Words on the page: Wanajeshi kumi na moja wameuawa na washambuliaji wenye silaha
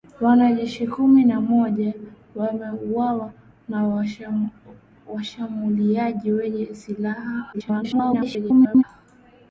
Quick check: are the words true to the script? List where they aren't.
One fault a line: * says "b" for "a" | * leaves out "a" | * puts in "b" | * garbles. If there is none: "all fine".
* garbles